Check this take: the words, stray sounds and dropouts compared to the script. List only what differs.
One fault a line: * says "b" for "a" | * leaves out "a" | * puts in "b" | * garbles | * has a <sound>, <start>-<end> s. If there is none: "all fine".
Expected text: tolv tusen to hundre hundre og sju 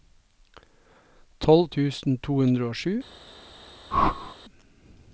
* leaves out "hundre"
* has a whoosh, 3.9-4.4 s